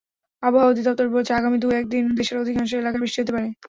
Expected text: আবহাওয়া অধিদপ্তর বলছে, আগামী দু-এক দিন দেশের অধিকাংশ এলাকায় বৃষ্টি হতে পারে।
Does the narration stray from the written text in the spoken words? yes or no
no